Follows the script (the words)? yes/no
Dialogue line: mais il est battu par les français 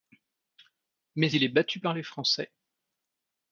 yes